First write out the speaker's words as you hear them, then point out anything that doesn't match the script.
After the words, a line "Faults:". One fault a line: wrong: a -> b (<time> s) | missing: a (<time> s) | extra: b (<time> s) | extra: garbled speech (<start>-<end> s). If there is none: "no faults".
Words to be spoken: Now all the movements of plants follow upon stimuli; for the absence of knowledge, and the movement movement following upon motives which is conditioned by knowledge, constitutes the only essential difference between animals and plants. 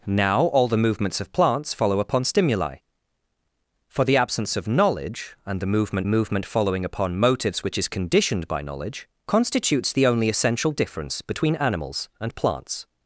Now all the movements of plants follow upon stimuli; for the absence of knowledge, and the movement movement following upon motives which is conditioned by knowledge, constitutes the only essential difference between animals and plants.
Faults:
no faults